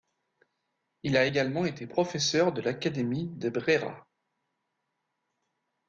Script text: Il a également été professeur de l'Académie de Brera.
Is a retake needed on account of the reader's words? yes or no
no